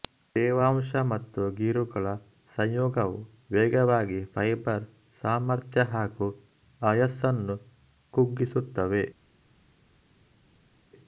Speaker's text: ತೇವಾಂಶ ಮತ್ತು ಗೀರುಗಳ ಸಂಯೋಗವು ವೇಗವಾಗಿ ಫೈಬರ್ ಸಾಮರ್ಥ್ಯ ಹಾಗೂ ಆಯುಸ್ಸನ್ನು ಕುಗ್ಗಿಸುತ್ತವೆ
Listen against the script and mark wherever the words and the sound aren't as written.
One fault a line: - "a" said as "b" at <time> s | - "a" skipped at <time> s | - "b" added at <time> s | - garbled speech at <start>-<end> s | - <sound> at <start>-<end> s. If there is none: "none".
none